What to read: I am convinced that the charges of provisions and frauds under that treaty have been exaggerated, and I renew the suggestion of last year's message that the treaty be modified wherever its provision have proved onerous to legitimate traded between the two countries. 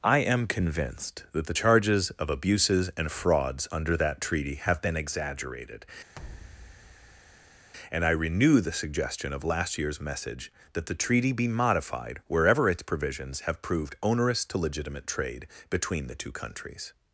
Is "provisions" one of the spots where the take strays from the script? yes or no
yes